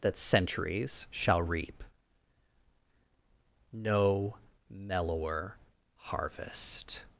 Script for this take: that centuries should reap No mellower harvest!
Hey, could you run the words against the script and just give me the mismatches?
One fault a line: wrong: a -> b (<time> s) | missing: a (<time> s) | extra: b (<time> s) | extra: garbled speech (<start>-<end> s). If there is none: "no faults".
wrong: should -> shall (1.1 s)